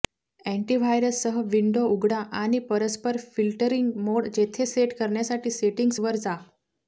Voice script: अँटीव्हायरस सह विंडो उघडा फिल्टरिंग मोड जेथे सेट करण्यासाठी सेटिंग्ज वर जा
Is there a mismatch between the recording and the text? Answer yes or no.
yes